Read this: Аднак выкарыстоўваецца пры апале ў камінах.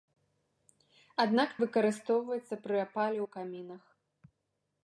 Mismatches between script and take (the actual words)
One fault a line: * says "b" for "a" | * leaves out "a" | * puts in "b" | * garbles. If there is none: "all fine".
all fine